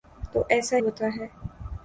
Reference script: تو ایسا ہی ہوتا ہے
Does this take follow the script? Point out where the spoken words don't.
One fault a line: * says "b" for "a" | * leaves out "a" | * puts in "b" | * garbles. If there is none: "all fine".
* leaves out "ہی"